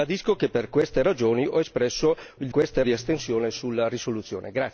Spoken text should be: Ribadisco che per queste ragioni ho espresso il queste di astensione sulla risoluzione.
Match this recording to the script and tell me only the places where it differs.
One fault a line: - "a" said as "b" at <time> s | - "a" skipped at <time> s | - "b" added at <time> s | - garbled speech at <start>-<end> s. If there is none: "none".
none